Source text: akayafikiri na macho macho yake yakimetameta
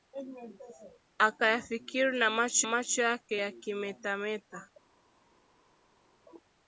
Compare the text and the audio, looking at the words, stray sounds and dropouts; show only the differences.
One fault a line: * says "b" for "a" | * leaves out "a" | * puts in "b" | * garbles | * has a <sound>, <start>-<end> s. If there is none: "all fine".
all fine